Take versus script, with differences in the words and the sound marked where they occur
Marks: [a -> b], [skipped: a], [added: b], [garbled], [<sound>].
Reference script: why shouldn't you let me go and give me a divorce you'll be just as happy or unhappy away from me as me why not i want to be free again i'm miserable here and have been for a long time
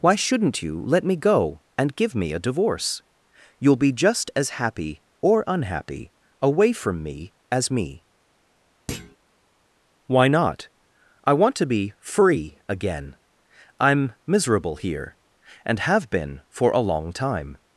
why shouldn't you let me go and give me a divorce you'll be just as happy or unhappy away from me as me [thud] why not i want to be free again i'm miserable here and have been for a long time